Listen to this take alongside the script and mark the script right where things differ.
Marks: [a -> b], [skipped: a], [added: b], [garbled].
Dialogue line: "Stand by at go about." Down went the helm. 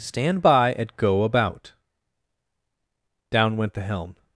"Stand by at go about." Down went the helm.